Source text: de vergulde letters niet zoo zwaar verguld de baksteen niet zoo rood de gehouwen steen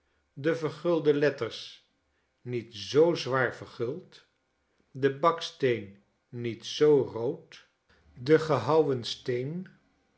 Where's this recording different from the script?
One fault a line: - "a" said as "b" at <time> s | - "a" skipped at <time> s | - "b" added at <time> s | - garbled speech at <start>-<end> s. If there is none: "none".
none